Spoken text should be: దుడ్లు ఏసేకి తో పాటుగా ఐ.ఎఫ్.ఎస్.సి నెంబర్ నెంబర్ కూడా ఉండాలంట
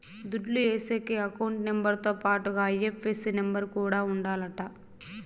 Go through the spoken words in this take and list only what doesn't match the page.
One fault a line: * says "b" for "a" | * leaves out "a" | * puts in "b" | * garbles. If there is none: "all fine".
* puts in "అకౌంట్ నెంబర్"
* leaves out "నెంబర్"